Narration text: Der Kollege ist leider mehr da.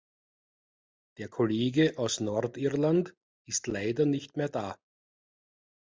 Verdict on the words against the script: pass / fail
fail